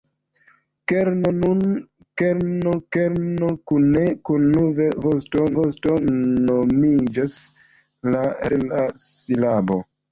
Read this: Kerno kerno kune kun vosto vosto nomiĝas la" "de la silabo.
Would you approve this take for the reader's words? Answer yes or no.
yes